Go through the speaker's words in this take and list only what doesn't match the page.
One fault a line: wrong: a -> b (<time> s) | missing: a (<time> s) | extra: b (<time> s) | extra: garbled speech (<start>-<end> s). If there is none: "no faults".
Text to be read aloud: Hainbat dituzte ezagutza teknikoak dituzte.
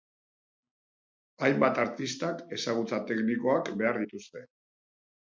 wrong: dituzte -> artistak (1.8 s)
extra: behar (3.8 s)